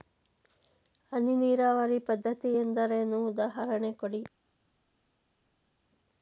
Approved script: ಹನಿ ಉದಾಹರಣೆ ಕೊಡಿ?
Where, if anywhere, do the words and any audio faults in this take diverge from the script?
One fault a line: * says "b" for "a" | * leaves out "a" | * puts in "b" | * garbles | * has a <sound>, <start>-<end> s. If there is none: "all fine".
* puts in "ನೀರಾವರಿ ಪದ್ಧತಿ ಎಂದರೇನು"